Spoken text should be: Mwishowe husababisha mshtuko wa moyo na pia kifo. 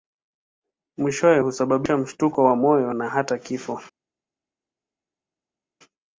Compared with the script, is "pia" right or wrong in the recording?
wrong